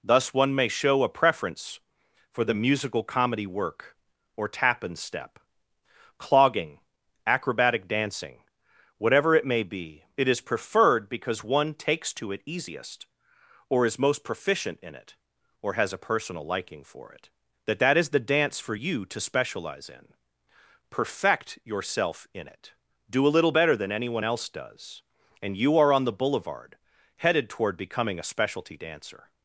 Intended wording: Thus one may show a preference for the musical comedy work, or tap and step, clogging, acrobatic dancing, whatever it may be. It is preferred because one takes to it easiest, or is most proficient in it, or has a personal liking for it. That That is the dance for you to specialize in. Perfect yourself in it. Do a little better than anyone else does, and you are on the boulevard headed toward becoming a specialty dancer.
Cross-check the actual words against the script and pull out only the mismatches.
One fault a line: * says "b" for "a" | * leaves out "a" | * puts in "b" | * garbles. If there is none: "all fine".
all fine